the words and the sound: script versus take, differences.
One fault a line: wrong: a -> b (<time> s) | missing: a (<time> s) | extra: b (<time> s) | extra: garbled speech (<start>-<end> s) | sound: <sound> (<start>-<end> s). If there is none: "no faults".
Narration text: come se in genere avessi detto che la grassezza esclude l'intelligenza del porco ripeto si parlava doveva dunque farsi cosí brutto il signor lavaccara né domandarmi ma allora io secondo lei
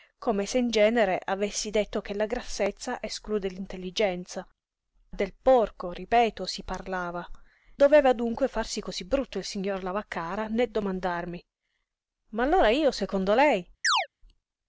sound: chirp (13.8-14.1 s)